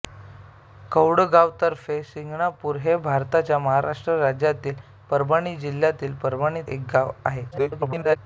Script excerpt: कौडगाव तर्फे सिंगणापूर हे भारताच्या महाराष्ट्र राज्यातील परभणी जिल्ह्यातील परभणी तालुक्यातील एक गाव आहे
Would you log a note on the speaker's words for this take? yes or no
yes